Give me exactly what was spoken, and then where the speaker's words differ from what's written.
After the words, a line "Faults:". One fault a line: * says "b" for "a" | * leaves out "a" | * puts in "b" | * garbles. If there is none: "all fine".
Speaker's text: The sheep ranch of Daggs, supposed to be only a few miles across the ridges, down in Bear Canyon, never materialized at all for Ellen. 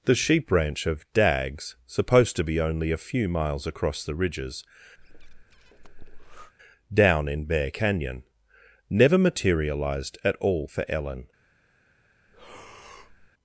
The sheep ranch of Daggs, supposed to be only a few miles across the ridges, down in Bear Canyon, never materialized at all for Ellen.
Faults:
all fine